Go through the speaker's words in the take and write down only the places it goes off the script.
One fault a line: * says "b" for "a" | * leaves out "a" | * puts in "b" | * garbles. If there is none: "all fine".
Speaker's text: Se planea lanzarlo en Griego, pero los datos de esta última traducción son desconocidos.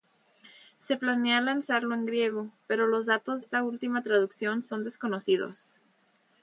* leaves out "de"